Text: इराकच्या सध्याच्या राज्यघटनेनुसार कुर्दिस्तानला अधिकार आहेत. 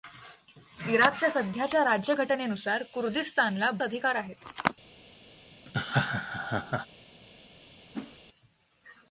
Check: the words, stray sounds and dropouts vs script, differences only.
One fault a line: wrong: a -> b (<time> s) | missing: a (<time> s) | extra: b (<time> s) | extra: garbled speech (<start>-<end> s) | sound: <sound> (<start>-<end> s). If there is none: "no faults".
sound: laugh (5.7-6.9 s)
sound: whoosh (7.9-8.2 s)